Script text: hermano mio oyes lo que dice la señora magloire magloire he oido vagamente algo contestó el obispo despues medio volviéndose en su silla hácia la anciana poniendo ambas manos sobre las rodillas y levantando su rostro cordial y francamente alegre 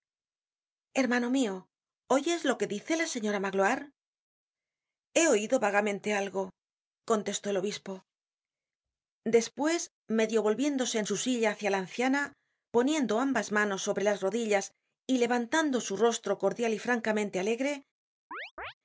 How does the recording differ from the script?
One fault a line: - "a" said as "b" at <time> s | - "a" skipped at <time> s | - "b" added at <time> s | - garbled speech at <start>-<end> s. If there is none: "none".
- "magloire" skipped at 3.9 s